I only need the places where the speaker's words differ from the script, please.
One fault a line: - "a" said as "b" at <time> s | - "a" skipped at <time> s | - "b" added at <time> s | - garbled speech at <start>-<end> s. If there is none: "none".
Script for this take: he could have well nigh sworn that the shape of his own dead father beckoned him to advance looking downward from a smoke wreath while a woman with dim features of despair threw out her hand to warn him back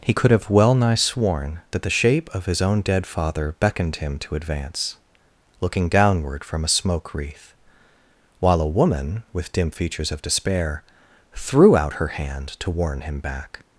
none